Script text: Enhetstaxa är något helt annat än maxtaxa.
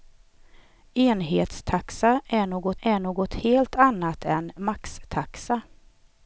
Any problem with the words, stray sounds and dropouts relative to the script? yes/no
yes